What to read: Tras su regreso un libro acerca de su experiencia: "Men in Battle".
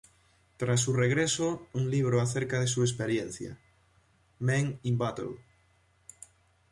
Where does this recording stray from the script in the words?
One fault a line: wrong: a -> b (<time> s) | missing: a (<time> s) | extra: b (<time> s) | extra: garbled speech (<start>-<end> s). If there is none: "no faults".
no faults